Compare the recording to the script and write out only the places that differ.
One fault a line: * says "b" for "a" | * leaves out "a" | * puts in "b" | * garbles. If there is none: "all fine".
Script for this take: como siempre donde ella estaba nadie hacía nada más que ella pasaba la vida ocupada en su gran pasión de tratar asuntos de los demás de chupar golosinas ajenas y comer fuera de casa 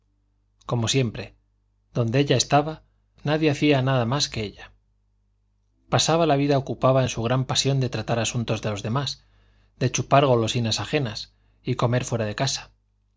all fine